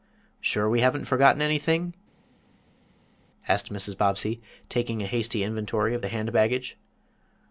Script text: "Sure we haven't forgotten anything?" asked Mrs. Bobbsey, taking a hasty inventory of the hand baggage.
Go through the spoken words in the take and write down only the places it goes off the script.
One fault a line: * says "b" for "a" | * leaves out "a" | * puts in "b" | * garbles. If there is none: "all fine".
all fine